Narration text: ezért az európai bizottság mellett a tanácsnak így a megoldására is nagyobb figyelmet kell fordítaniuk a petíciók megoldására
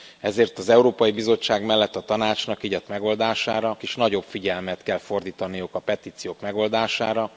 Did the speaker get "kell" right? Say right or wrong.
right